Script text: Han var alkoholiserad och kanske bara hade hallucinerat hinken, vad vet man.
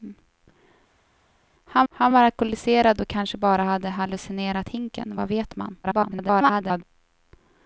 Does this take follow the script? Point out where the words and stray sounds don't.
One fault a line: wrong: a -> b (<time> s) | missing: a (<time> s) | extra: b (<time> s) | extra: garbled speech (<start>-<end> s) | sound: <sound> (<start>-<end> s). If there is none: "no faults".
extra: han (1.9 s)
extra: garbled speech (5.8-6.8 s)